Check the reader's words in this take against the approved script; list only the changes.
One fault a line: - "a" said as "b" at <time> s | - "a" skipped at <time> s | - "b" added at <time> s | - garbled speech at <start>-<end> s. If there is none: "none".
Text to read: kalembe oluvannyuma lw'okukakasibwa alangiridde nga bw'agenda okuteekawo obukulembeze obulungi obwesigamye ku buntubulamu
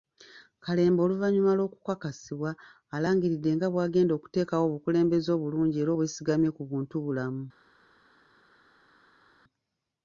- "era" added at 5.8 s